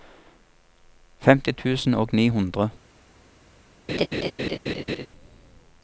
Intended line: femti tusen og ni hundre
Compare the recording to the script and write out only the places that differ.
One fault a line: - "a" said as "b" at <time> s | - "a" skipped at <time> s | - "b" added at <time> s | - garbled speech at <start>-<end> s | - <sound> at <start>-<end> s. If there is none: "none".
- laugh at 3.9-5.1 s